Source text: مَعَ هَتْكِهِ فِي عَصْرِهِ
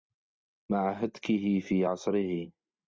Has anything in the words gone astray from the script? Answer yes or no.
no